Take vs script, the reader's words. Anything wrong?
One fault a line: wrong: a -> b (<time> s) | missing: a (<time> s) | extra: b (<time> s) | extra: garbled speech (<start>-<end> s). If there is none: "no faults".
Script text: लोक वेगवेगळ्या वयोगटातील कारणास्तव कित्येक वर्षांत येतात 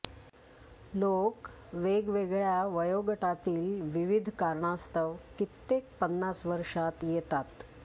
extra: विविध (3.9 s)
extra: पन्नास (6.0 s)